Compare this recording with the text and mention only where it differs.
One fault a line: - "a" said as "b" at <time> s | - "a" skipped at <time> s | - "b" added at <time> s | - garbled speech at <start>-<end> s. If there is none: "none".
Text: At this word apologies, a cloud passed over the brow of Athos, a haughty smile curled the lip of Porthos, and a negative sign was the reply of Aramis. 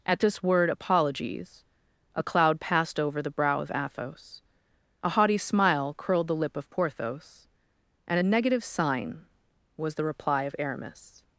none